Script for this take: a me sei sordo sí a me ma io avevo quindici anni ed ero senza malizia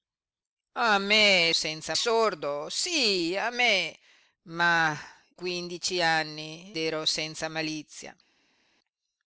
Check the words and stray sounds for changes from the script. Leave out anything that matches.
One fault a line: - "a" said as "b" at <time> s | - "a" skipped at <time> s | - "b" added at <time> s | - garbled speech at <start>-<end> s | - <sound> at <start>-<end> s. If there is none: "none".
- "sei" said as "senza" at 1.5 s
- "io avevo" skipped at 5.0 s
- "ed" skipped at 6.8 s